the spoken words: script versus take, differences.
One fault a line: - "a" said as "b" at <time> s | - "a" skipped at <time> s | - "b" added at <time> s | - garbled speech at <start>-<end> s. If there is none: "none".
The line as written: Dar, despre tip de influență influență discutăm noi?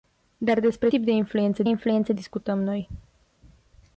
none